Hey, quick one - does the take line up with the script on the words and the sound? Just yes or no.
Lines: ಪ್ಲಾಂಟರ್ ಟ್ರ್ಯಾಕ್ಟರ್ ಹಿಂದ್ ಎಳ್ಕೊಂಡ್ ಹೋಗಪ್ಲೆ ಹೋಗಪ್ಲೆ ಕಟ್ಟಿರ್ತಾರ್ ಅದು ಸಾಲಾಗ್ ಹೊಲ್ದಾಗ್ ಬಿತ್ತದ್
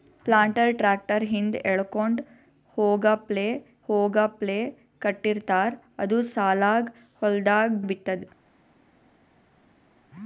yes